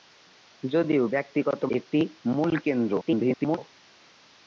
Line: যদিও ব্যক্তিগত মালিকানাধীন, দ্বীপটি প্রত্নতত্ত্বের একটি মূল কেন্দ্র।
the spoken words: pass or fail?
fail